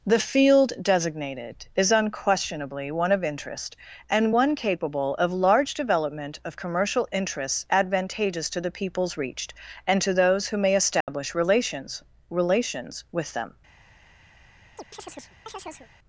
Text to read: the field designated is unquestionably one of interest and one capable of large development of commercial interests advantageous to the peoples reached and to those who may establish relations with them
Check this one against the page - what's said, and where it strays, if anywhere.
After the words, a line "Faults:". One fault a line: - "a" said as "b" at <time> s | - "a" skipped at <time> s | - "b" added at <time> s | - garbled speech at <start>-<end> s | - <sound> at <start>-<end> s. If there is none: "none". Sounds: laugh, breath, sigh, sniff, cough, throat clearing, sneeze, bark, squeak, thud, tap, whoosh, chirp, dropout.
the field designated is unquestionably one of interest and one capable of large development of commercial interests advantageous to the peoples reached and to those who may establish relations relations with them
Faults:
- dropout at 11.0-11.1 s
- "relations" added at 12.3 s
- chirp at 14.8-15.9 s